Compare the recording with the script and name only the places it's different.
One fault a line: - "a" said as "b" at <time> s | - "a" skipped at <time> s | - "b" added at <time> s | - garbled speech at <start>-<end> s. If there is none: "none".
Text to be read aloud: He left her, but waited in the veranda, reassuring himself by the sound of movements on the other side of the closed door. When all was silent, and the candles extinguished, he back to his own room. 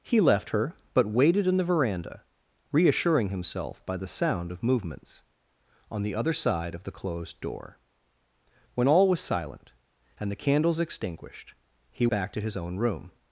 none